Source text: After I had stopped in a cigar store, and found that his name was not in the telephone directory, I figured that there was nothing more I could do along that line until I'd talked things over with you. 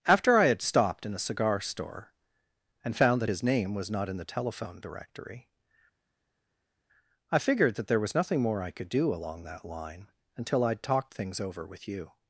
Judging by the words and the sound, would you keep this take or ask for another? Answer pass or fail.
pass